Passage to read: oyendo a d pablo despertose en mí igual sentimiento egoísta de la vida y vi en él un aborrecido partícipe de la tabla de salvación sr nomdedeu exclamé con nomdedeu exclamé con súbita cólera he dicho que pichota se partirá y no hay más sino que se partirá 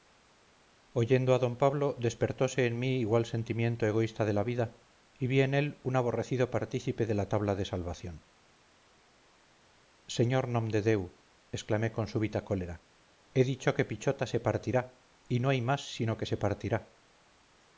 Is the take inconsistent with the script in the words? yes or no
yes